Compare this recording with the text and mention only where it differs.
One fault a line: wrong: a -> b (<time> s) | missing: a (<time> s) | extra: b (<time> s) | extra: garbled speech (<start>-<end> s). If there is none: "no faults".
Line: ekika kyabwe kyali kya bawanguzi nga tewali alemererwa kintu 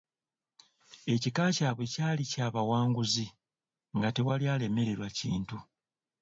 no faults